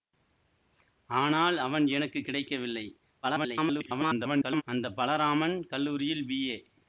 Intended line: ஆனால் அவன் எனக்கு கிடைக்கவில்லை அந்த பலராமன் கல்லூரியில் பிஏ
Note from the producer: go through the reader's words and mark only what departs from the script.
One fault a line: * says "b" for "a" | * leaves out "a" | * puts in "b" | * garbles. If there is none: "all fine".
* garbles